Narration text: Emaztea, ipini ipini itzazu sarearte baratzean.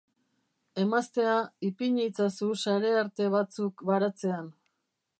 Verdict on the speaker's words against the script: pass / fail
fail